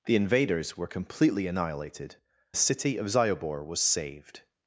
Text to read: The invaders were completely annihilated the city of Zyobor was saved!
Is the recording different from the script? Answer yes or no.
no